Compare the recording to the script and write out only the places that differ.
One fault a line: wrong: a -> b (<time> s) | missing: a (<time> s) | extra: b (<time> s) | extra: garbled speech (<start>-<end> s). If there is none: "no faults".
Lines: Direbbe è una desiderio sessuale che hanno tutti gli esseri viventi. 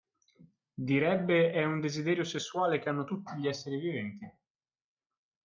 wrong: una -> un (1.6 s)